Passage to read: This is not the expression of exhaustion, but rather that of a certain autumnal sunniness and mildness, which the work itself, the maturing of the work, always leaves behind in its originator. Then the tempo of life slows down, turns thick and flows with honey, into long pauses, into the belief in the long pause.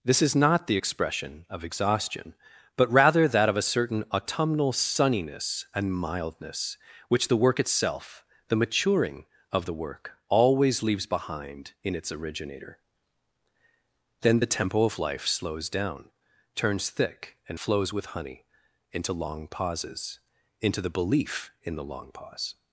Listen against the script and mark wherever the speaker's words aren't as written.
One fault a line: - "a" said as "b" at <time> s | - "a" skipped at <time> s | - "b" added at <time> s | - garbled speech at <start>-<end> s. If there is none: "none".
none